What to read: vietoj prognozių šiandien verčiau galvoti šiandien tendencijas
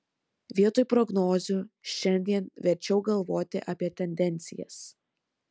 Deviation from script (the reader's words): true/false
true